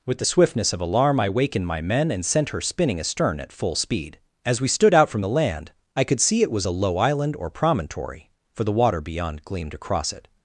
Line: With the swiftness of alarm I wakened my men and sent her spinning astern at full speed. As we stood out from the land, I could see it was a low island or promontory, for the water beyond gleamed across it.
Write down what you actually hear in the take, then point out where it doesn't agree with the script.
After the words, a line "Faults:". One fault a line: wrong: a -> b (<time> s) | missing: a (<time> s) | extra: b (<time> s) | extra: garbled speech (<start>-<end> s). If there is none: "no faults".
With the swiftness of alarm I wakened my men and sent her spinning astern at full speed. As we stood out from the land, I could see it was a low island or promontory, for the water beyond gleamed across it.
Faults:
no faults